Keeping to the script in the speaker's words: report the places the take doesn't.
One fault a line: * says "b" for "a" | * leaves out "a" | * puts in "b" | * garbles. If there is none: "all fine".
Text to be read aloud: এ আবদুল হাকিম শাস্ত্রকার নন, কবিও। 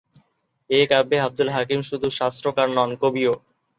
* puts in "কাব্যে"
* puts in "শুধু"